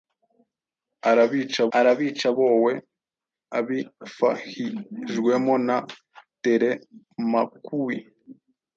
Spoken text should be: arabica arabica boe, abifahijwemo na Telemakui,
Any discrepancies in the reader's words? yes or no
no